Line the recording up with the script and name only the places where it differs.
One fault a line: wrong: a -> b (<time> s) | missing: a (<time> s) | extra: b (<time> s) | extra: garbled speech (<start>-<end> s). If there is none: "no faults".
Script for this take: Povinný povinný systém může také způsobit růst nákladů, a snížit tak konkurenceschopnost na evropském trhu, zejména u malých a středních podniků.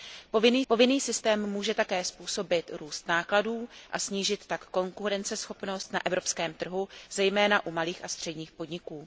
no faults